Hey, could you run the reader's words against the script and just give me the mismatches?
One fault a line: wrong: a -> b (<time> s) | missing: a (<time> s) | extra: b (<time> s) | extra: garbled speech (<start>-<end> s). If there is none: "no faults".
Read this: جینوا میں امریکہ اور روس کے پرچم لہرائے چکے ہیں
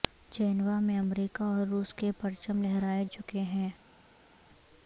no faults